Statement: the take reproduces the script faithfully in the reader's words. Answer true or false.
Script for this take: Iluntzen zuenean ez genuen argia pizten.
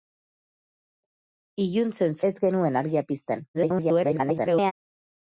false